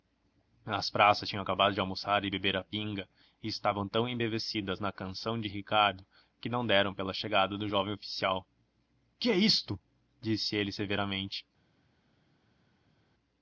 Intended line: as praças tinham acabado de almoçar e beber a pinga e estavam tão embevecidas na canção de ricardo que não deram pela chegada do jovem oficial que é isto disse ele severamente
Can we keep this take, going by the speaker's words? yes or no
yes